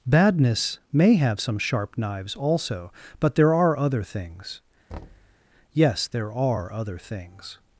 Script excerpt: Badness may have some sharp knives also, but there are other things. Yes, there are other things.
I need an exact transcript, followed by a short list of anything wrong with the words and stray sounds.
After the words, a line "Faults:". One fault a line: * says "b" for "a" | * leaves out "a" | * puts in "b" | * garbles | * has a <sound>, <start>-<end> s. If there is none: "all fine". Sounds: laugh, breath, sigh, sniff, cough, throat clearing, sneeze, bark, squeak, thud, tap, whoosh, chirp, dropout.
Badness may have some sharp knives also, but there are other things. Yes, there are other things.
Faults:
* has a thud, 4.9-5.4 s